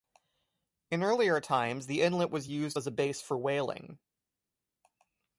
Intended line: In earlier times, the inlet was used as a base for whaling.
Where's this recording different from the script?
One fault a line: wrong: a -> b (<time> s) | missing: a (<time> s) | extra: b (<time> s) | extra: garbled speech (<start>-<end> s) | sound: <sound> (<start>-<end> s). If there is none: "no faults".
no faults